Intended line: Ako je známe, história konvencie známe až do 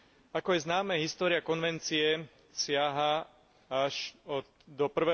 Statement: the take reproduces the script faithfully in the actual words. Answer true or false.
false